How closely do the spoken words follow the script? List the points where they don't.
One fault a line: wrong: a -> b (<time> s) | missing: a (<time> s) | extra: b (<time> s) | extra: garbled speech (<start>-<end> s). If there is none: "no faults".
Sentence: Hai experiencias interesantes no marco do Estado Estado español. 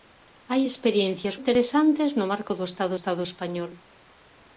no faults